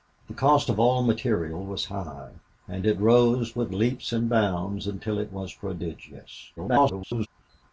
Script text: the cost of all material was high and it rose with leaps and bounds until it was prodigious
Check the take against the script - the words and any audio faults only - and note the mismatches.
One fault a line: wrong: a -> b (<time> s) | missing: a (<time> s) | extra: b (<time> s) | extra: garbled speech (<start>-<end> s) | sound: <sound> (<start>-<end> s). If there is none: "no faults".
extra: garbled speech (6.6-7.3 s)